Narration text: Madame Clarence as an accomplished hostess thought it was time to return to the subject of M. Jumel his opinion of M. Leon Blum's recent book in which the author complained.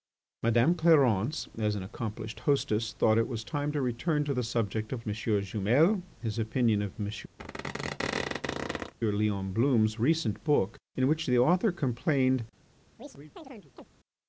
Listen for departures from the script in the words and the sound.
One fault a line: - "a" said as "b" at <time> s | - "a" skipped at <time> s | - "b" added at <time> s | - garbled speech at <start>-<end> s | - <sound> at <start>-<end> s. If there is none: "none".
- squeak at 7.4-8.9 s
- chirp at 13.0-13.9 s